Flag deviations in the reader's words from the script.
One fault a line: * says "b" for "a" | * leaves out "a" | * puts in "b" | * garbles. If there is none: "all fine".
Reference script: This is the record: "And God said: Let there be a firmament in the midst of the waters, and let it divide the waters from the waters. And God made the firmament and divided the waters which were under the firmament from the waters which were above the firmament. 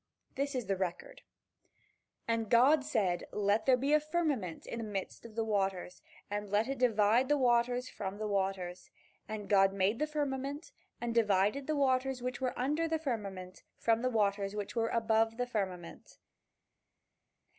all fine